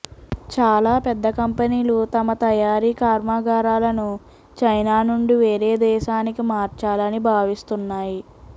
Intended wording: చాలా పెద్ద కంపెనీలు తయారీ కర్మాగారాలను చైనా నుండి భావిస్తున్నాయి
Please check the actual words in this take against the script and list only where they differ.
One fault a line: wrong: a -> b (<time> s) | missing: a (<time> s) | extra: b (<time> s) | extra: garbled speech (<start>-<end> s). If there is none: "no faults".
extra: తమ (2.1 s)
extra: వేరే దేశానికి మార్చాలని (5.4 s)